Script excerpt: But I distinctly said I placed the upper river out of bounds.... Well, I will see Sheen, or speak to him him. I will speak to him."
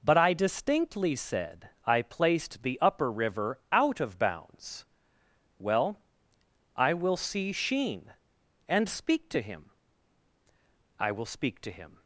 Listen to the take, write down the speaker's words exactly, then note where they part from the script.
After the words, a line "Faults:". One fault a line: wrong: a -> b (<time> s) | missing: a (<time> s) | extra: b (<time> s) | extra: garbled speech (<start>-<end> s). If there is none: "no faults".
But I distinctly said I placed the upper river out of bounds.... Well, I will see Sheen, and speak to him. I will speak to him."
Faults:
wrong: or -> and (8.7 s)
missing: him (9.7 s)